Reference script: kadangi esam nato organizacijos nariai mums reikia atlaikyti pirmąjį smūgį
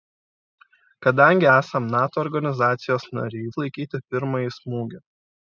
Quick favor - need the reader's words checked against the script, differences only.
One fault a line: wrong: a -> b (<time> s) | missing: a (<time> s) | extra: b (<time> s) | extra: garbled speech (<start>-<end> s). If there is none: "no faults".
missing: mums reikia (3.5 s)